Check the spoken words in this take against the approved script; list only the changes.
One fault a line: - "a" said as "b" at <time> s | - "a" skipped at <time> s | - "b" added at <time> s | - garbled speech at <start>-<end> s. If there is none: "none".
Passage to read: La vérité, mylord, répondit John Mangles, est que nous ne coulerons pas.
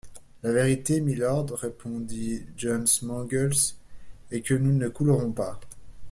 none